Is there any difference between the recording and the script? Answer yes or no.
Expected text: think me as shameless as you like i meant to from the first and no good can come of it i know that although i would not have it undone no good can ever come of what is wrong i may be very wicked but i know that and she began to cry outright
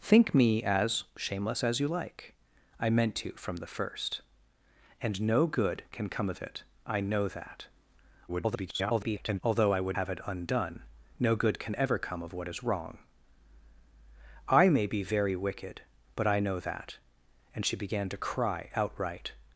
yes